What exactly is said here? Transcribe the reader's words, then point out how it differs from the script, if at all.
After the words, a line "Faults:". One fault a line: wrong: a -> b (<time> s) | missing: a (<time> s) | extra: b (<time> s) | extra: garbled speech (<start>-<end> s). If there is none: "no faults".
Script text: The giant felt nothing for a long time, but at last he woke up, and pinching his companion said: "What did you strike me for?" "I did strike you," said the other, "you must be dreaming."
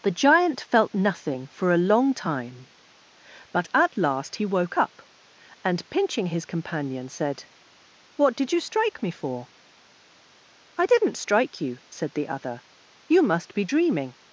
The giant felt nothing for a long time, but at last he woke up, and pinching his companion said: "What did you strike me for?" "I didn't strike you," said the other, "you must be dreaming."
Faults:
wrong: did -> didn't (10.9 s)